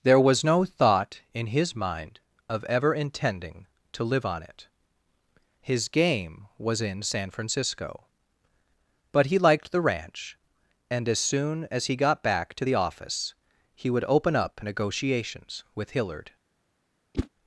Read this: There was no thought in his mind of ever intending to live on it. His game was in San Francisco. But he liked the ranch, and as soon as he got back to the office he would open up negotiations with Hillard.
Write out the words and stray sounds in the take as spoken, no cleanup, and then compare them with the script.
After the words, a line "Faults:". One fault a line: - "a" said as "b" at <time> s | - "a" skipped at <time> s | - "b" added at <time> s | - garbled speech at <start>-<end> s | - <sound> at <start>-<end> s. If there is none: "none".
There was no thought in his mind of ever intending to live on it. His game was in San Francisco. But he liked the ranch, and as soon as he got back to the office he would open up negotiations with Hillard.
Faults:
- whoosh at 17.1-17.3 s